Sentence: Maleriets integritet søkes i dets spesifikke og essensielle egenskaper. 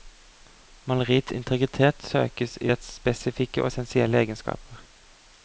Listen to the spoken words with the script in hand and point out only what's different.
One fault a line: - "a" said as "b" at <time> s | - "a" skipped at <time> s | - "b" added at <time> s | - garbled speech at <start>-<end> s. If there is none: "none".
none